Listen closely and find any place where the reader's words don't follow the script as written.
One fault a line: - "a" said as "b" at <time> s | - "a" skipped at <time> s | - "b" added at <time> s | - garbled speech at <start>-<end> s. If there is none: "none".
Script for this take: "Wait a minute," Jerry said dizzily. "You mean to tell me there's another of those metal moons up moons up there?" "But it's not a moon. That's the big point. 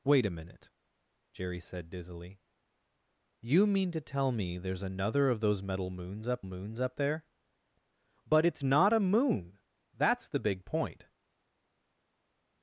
none